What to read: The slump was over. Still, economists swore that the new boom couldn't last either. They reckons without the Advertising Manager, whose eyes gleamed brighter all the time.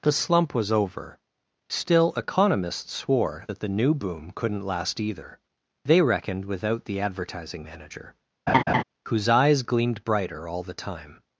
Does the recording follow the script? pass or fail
fail